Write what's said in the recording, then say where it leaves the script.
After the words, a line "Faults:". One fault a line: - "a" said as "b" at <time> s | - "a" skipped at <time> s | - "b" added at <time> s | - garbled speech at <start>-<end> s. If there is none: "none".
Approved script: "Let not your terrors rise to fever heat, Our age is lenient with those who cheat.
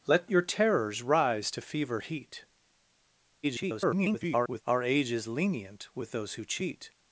"Let your terrors rise to fever heat, [garbled] Our age is lenient with those who cheat.
Faults:
- "not" skipped at 0.3 s
- garbled speech at 3.4-4.6 s